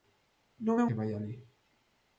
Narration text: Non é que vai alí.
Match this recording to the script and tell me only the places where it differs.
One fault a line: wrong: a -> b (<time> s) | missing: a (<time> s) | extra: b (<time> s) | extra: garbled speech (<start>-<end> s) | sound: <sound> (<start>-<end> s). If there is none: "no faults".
no faults